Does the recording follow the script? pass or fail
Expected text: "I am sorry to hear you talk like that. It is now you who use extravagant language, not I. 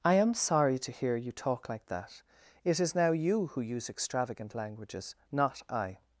fail